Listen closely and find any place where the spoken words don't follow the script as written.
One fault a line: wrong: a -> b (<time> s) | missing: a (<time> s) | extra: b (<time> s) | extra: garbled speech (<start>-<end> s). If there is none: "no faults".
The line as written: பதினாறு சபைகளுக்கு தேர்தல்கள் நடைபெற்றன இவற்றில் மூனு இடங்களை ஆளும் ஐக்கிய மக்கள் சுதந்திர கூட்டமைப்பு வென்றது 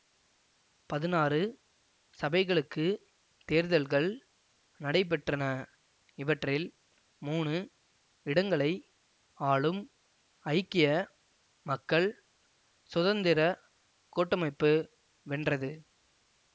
no faults